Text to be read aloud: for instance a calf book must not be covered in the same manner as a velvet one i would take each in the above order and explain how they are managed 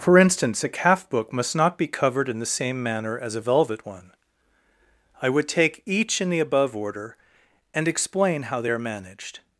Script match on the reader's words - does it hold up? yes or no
yes